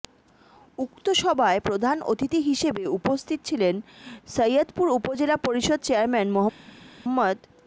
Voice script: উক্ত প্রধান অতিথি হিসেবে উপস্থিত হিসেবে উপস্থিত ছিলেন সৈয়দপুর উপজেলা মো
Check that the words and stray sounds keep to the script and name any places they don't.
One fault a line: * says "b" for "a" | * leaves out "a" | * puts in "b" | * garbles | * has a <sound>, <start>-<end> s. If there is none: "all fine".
* puts in "সভায়"
* leaves out "হিসেবে উপস্থিত"
* puts in "পরিষদ চেয়ারম্যান"